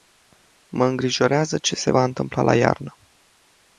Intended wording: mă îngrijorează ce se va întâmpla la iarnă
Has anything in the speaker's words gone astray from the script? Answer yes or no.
no